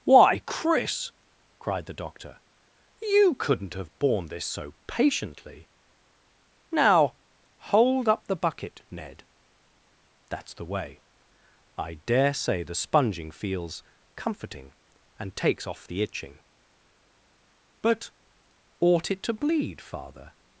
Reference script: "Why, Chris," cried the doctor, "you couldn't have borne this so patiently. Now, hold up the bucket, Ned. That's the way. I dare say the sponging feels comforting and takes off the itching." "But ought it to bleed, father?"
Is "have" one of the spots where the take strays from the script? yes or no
no